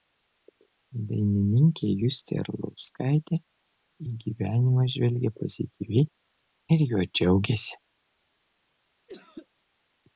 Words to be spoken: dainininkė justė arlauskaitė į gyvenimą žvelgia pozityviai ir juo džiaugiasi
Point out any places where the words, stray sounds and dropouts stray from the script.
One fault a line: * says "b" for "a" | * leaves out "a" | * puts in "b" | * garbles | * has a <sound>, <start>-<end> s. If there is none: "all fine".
* has a cough, 9.1-9.5 s